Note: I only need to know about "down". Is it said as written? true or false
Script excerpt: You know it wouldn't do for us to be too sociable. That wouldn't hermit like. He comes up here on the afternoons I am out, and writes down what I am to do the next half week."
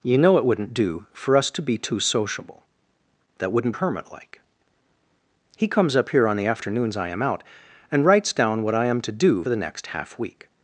true